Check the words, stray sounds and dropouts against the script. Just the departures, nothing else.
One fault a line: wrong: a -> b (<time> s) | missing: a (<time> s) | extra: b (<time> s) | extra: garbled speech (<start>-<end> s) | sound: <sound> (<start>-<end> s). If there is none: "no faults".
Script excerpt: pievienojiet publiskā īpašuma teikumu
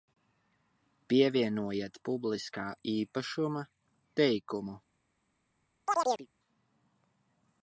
sound: chirp (5.9-6.3 s)